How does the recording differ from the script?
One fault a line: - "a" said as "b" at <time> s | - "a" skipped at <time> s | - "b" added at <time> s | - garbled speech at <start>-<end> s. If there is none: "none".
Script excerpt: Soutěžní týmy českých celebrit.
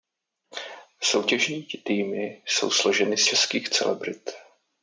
- "jsou složeny z" added at 2.5 s